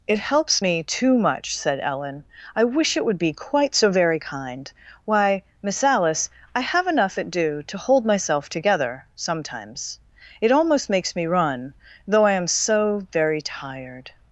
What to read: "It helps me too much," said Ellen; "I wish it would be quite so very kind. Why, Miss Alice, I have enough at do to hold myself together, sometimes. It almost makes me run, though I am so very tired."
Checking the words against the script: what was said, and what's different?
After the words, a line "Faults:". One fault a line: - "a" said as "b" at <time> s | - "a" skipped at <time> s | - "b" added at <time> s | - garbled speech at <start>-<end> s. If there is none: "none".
"It helps me too much," said Ellen; "I wish it would be quite so very kind. Why, Miss Alice, I have enough at do to hold myself together, sometimes. It almost makes me run, though I am so very tired."
Faults:
none